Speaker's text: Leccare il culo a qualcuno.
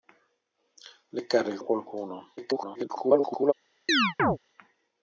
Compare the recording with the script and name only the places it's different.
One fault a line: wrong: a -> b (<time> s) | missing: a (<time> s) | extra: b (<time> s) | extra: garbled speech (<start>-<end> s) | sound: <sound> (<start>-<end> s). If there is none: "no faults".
missing: culo (1.6 s)
extra: garbled speech (2.4-3.5 s)
sound: chirp (3.9-4.4 s)